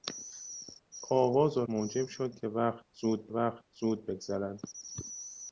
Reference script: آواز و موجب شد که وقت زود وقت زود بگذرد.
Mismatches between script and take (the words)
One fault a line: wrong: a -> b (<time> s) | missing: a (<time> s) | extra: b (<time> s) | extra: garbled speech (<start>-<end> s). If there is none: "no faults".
no faults